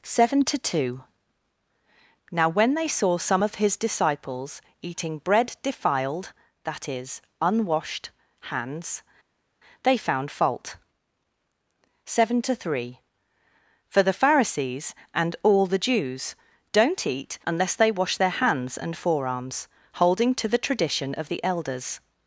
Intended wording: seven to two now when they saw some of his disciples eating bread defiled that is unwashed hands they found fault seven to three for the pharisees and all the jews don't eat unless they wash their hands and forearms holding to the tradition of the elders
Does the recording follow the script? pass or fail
pass